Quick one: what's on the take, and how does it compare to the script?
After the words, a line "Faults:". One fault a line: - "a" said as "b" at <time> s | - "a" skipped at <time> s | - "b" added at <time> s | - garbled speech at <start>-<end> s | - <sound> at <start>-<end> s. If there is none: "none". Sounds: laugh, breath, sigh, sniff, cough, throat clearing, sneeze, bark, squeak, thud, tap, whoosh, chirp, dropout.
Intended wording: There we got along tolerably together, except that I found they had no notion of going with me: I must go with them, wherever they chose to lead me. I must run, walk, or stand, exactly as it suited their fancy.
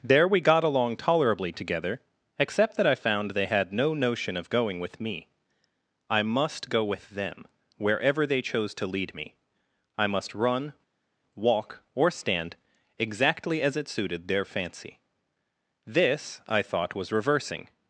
There we got along tolerably together, except that I found they had no notion of going with me: I must go with them, wherever they chose to lead me. I must run, walk, or stand, exactly as it suited their fancy. This, I thought, was reversing
Faults:
- "This I thought was reversing" added at 15.8 s